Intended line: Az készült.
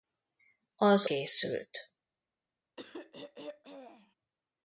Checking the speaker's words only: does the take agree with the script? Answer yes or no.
yes